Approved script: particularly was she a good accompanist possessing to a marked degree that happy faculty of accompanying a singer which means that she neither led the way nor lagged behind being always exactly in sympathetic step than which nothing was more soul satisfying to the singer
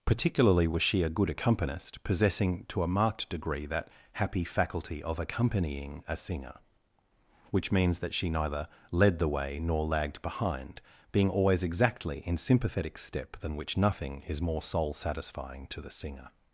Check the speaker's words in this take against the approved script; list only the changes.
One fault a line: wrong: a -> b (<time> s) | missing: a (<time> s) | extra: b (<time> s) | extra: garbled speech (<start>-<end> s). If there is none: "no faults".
wrong: was -> is (14.2 s)